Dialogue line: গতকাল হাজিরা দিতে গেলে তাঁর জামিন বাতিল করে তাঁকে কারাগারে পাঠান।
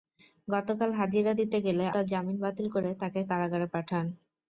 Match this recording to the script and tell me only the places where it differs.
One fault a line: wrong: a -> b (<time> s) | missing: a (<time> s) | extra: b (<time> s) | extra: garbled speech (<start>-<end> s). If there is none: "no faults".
no faults